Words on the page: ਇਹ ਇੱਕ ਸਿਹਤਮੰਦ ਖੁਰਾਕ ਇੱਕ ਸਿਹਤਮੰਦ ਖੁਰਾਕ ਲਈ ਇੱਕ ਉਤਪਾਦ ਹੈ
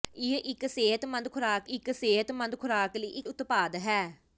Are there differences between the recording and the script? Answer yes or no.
no